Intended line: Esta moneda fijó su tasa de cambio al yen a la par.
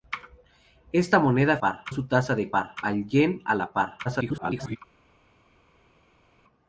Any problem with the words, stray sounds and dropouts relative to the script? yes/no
yes